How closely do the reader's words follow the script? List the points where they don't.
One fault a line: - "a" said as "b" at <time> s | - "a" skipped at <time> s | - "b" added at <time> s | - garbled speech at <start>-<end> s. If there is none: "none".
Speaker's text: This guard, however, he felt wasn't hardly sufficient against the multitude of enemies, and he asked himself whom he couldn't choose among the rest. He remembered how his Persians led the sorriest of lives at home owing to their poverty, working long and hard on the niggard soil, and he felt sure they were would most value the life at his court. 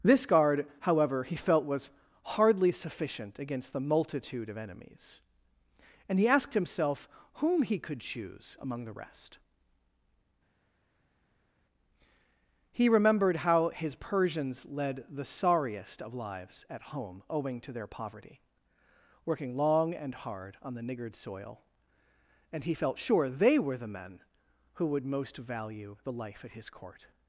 - "wasn't" said as "was" at 1.6 s
- "couldn't" said as "could" at 7.8 s
- "the men who" added at 23.8 s